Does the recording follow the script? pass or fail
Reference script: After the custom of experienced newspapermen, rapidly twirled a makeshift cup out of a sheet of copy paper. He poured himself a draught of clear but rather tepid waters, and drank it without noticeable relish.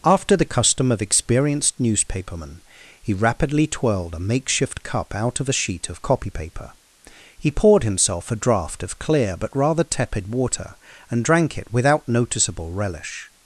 fail